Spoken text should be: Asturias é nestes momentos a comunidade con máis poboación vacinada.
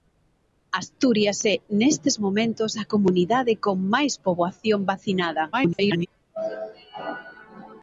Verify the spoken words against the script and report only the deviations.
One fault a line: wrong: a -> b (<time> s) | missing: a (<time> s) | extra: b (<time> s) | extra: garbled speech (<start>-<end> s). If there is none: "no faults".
extra: garbled speech (5.5-6.1 s)